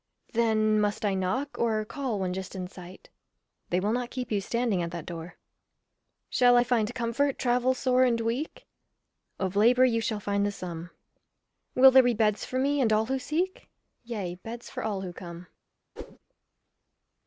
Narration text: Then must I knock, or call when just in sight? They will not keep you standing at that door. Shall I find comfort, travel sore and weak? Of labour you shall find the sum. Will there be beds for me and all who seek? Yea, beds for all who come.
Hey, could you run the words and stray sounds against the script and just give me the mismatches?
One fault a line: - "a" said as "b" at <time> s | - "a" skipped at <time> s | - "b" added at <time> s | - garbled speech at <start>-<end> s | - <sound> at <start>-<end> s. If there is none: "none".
- whoosh at 16.0-16.2 s